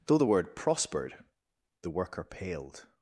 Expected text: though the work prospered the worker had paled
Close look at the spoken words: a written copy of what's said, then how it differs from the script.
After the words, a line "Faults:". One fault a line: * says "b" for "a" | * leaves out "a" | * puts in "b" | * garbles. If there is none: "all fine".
though the word prospered the worker paled
Faults:
* says "word" for "work"
* leaves out "had"